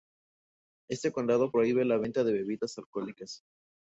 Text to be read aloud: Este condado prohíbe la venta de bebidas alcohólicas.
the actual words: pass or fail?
pass